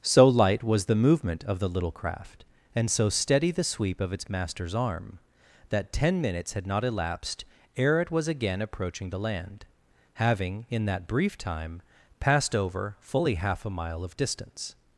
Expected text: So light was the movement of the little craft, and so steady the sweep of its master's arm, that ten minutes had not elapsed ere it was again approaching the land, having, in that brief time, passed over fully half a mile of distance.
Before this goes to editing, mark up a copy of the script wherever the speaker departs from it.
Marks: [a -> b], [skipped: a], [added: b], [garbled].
So light was the movement of the little craft, and so steady the sweep of its master's arm, that ten minutes had not elapsed ere it was again approaching the land, having, in that brief time, passed over fully half a mile of distance.